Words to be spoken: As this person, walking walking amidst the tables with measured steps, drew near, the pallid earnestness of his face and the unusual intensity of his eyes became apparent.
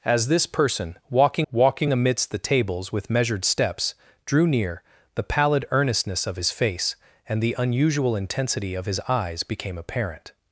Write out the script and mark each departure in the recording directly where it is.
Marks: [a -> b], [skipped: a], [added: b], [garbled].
As this person, walking walking amidst the tables with measured steps, drew near, the pallid earnestness of his face and the unusual intensity of his eyes became apparent.